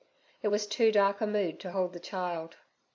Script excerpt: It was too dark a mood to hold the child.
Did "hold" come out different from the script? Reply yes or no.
no